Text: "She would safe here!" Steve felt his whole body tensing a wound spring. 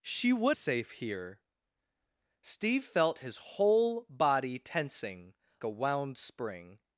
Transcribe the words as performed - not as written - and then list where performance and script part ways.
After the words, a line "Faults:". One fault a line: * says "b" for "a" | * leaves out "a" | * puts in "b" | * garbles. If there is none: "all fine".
"She would safe here!" Steve felt his whole body tensing a wound spring.
Faults:
all fine